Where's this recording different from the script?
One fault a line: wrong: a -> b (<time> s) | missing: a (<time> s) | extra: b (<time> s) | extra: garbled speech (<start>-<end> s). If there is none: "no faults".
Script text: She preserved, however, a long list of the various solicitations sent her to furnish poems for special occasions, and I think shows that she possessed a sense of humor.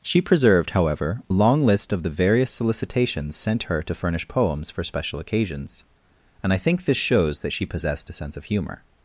extra: this (6.8 s)